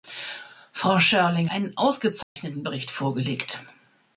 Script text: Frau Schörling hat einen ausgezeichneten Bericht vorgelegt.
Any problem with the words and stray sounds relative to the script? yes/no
yes